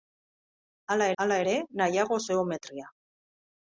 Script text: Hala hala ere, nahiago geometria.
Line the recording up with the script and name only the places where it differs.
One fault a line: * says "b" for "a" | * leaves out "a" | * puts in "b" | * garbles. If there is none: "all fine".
all fine